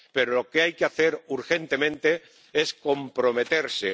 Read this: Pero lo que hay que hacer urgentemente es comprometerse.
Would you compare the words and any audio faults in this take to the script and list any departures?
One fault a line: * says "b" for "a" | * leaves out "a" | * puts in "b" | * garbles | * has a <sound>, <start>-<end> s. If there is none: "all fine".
all fine